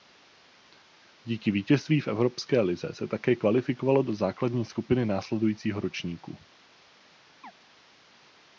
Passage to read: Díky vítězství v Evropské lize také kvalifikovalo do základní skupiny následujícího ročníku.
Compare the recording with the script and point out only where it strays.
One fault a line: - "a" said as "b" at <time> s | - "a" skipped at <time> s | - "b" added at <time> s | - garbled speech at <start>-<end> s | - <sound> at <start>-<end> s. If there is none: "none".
- "se" added at 2.9 s
- chirp at 7.4-7.5 s